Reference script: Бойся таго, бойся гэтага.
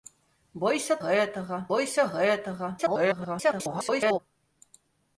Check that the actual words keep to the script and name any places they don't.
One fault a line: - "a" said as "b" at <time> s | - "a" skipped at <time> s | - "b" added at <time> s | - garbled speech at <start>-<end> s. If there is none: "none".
- "таго" said as "гэтага" at 1.0 s
- garbled speech at 2.8-4.2 s